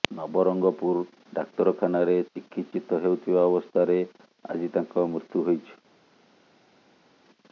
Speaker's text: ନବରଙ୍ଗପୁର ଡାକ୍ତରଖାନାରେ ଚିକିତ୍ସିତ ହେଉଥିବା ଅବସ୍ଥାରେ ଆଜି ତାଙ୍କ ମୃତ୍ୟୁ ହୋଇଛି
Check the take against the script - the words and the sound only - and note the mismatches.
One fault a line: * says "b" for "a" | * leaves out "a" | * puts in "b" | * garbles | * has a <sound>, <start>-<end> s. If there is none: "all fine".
all fine